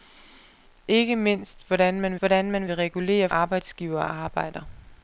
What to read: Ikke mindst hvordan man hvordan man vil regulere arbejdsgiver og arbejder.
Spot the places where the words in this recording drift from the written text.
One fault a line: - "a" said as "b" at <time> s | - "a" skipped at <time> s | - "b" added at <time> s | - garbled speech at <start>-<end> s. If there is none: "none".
none